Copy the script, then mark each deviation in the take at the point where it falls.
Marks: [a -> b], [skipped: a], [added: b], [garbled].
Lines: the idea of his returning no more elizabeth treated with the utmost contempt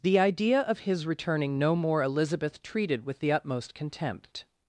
the idea of his returning no more elizabeth treated with the utmost contempt